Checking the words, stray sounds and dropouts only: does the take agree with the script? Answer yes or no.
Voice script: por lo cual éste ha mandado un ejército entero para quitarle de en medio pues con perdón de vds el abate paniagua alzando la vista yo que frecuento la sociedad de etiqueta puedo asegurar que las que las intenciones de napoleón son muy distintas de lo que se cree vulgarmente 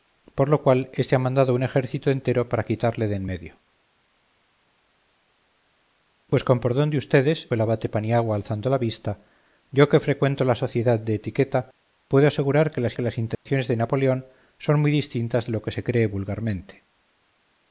no